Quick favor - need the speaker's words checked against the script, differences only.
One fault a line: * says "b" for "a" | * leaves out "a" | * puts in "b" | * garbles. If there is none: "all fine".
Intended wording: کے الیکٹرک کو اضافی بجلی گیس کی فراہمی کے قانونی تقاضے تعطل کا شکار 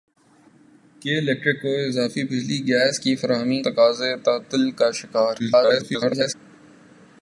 * leaves out "کے قانونی"
* garbles